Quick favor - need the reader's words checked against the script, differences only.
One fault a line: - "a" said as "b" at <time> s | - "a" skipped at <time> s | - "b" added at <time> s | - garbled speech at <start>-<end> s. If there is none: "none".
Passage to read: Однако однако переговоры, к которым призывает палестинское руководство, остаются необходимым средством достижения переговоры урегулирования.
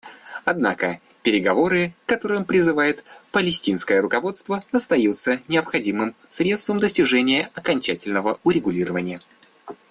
- "однако" skipped at 1.0 s
- "переговоры" said as "окончательного" at 7.5 s